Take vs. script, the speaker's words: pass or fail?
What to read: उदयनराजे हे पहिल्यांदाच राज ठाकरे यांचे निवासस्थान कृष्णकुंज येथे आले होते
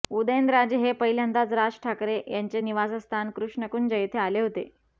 pass